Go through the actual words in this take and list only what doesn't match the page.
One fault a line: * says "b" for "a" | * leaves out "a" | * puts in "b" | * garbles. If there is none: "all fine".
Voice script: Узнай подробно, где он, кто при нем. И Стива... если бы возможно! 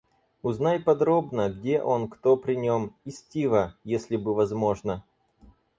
all fine